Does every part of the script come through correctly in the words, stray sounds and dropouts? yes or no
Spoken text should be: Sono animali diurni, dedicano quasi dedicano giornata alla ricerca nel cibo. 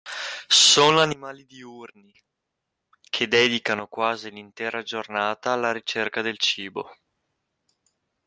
no